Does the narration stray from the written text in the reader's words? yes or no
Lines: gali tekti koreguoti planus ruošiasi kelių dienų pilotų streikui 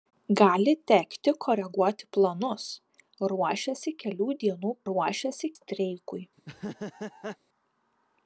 yes